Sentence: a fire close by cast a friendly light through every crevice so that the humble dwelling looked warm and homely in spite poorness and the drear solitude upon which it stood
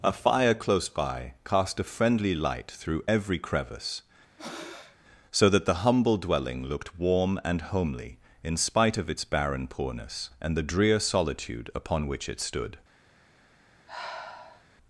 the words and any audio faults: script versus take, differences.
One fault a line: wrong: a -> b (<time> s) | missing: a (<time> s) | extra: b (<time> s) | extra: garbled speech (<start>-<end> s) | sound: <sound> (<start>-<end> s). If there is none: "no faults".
sound: breath (4.4-5.0 s)
extra: of its barren (9.0 s)
sound: sigh (13.9-14.6 s)